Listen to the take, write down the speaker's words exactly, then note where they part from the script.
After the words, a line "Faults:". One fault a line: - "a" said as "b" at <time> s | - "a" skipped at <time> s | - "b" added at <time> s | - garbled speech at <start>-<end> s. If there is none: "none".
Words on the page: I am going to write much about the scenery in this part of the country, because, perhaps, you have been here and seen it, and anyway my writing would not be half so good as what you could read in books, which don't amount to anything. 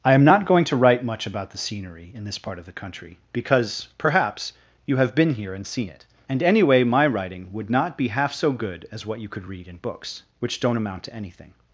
I am not going to write much about the scenery in this part of the country, because, perhaps, you have been here and seen it, and anyway my writing would not be half so good as what you could read in books, which don't amount to anything.
Faults:
- "not" added at 0.2 s